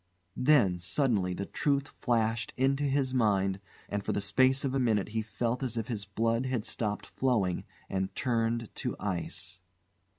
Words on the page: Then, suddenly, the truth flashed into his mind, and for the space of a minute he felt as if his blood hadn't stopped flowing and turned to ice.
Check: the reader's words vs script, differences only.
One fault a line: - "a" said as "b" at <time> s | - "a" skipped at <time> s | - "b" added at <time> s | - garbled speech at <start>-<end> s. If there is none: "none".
- "hadn't" said as "had" at 6.5 s